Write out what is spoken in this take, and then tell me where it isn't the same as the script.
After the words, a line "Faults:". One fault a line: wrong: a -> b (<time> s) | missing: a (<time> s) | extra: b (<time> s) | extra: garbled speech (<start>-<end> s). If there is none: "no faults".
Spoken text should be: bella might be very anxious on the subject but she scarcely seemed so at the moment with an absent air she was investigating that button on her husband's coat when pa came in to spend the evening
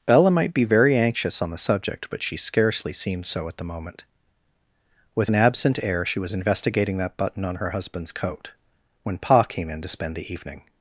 bella might be very anxious on the subject but she scarcely seemed so at the moment with an absent air she was investigating that button on her husband's coat when pa came in to spend the evening
Faults:
no faults